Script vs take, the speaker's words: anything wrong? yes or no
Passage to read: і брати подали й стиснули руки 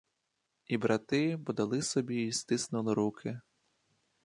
yes